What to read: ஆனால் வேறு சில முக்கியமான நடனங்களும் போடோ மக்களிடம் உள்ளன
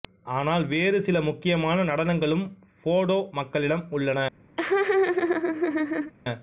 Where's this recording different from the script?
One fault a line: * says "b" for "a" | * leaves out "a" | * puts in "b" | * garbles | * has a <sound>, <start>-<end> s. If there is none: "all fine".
* has a laugh, 4.6-6.1 s